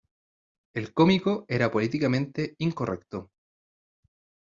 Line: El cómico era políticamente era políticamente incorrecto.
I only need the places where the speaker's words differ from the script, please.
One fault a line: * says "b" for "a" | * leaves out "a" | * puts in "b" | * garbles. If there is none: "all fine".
* leaves out "era políticamente"